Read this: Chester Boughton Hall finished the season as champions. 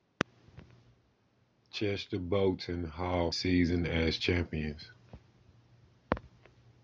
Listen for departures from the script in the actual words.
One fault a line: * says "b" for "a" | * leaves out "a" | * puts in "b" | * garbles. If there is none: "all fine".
* leaves out "finished the"